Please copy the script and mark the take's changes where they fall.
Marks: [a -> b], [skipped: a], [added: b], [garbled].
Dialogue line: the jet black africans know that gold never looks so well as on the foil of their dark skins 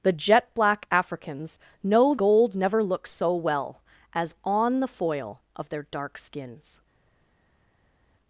the jet black africans know [skipped: that] gold never looks so well as on the foil of their dark skins